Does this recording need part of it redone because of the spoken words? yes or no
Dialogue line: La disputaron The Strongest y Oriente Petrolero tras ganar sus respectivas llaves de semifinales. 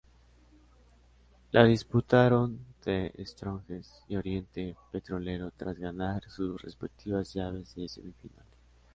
no